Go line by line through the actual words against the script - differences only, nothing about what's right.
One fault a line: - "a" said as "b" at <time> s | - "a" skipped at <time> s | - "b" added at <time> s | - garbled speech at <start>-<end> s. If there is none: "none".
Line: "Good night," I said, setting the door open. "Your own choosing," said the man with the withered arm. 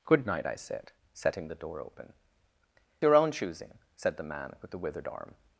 none